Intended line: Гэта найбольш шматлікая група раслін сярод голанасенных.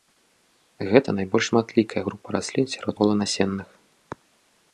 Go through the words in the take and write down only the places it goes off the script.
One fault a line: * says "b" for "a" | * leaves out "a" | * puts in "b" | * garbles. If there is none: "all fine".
all fine